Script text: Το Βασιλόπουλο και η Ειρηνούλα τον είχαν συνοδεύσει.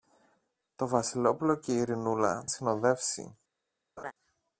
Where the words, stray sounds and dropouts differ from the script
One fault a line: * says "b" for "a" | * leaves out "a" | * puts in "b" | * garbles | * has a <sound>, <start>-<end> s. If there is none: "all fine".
* leaves out "τον είχαν"
* has a laugh, 4.0-4.1 s